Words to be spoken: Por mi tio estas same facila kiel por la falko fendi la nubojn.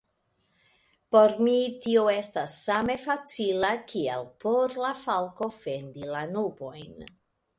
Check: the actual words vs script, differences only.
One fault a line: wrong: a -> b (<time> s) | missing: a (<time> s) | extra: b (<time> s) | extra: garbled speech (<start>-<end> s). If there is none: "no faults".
no faults